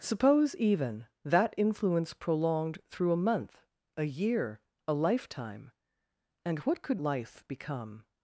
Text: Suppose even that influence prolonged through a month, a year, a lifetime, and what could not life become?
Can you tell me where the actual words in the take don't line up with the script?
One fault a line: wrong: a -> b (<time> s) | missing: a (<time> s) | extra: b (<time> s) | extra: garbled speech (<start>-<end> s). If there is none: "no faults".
missing: not (7.0 s)